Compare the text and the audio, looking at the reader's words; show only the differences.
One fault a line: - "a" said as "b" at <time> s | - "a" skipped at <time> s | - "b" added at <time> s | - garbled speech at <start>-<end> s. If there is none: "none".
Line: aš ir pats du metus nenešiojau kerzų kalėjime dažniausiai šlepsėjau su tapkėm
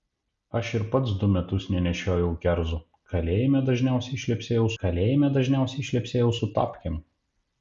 - "kalėjime dažniausiai šlepsėjau" added at 4.8 s